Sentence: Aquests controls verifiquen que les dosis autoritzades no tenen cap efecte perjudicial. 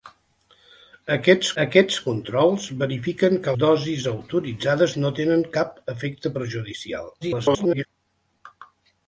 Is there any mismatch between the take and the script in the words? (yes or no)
yes